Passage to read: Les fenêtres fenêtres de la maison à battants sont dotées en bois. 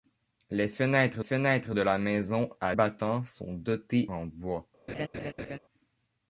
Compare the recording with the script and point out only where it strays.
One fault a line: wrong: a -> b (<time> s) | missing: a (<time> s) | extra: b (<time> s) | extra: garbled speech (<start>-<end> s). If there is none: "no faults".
no faults